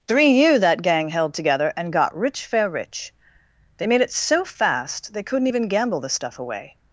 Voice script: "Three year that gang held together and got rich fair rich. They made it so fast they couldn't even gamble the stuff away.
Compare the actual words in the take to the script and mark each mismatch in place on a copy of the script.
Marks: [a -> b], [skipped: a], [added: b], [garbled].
"Three year that gang held together and got rich fair rich. They made it so fast they couldn't even gamble the stuff away.